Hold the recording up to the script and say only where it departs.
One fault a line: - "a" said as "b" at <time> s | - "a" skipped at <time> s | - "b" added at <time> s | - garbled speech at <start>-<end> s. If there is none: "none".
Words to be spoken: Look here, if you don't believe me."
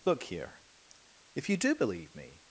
- "don't" said as "do" at 1.6 s